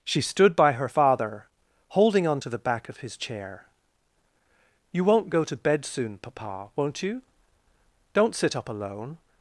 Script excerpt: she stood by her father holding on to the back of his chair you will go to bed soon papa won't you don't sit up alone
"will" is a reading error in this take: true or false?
true